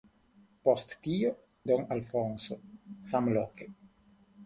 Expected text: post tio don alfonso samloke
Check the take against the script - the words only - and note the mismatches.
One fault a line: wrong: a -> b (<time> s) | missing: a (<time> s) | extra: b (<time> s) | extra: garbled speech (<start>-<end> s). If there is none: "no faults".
no faults